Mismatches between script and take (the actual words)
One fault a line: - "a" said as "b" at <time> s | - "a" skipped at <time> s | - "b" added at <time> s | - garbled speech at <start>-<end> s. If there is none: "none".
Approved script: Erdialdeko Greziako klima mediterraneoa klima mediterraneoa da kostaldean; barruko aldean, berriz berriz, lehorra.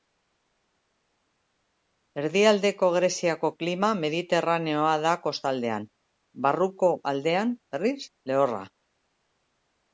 - "klima mediterraneoa" skipped at 5.0 s
- "berriz" skipped at 8.0 s